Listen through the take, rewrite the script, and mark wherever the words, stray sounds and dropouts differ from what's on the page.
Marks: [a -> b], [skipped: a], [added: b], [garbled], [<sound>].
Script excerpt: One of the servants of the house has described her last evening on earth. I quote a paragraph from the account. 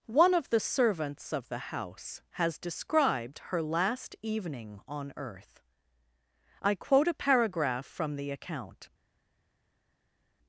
One of the servants of the house has described her last evening on earth. I quote a paragraph from the account.